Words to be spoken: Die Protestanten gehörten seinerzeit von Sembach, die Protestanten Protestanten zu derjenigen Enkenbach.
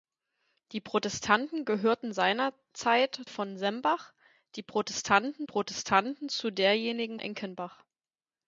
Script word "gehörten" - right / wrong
right